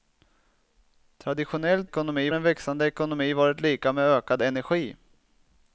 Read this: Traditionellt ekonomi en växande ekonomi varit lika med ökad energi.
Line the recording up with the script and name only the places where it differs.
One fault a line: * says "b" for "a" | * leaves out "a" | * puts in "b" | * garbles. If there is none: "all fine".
all fine